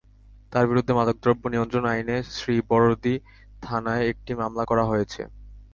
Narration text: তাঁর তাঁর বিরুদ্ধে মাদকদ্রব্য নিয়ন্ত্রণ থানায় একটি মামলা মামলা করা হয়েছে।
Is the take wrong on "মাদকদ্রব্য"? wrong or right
right